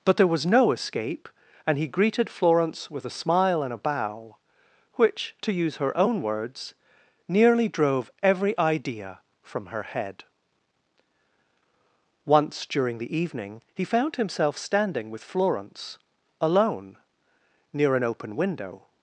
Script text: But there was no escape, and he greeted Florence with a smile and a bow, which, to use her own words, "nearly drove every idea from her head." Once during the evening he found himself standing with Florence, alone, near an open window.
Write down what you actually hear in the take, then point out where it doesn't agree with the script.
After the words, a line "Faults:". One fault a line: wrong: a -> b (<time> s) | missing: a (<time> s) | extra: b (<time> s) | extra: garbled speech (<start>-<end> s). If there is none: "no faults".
But there was no escape, and he greeted Florence with a smile and a bow, which, to use her own words, "nearly drove every idea from her head." Once during the evening he found himself standing with Florence, alone, near an open window.
Faults:
no faults